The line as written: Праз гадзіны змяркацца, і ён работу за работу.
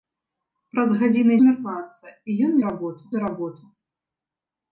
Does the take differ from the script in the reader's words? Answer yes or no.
no